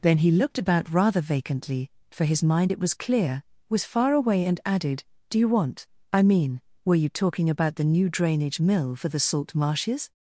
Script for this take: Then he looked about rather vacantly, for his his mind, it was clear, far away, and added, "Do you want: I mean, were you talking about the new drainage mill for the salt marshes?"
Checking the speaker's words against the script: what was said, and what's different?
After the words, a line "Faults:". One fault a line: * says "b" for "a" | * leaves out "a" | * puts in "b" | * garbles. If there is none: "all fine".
Then he looked about rather vacantly, for his mind, it was clear, was far away, and added, "Do you want: I mean, were you talking about the new drainage mill for the salt marshes?"
Faults:
* leaves out "his"
* puts in "was"